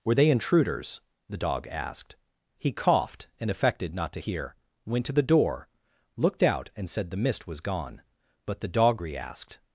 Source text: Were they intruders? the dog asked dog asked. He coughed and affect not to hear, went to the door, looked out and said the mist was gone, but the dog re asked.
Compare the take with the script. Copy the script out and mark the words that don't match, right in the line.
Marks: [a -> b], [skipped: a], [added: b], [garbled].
Were they intruders? the dog asked [skipped: dog asked.] He coughed and [affect -> affected] not to hear, went to the door, looked out and said the mist was gone, but the dog re asked.